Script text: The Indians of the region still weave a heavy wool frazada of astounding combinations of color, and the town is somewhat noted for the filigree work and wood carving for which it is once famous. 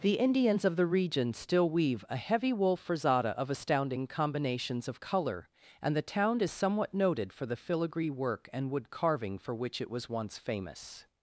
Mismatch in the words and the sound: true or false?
true